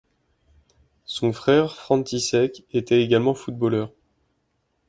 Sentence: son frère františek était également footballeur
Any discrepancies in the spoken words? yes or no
no